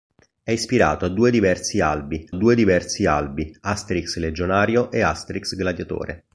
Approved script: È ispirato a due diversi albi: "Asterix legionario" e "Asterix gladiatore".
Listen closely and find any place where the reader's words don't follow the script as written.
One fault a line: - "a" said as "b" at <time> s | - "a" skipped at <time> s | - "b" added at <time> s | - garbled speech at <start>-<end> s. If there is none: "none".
- "due diversi albi" added at 2.3 s